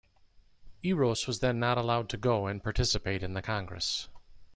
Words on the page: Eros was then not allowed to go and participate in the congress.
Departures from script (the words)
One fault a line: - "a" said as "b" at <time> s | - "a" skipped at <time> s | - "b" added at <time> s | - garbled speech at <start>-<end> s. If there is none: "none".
none